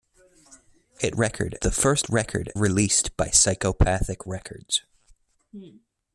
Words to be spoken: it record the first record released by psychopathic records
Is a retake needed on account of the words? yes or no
no